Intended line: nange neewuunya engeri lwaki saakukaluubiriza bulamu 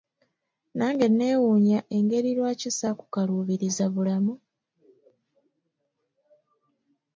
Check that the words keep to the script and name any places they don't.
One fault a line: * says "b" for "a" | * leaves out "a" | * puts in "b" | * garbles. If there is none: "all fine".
all fine